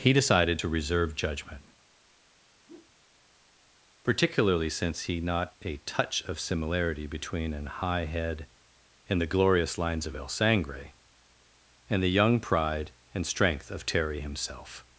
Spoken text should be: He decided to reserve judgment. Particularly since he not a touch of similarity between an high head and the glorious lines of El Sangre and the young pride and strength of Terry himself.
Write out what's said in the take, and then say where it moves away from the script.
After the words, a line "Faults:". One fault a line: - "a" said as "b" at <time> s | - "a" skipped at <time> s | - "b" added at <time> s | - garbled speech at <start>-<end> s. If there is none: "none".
He decided to reserve judgment. Particularly since he not a touch of similarity between an high head and the glorious lines of El Sangre and the young pride and strength of Terry himself.
Faults:
none